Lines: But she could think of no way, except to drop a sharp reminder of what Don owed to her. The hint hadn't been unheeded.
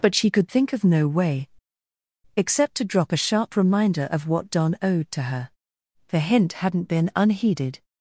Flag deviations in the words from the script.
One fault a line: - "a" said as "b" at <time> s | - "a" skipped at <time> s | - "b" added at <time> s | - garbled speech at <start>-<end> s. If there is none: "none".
none